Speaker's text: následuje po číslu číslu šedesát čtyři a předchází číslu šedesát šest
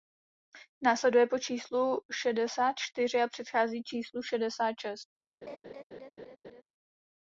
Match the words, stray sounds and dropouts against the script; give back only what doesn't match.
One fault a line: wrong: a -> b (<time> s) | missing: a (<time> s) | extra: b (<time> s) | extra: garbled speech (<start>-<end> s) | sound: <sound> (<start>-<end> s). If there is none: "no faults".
missing: číslu (2.0 s)
sound: laugh (5.4-6.6 s)